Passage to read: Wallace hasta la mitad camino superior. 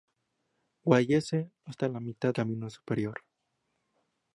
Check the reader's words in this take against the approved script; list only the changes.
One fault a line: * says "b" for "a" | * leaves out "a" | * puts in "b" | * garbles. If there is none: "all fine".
all fine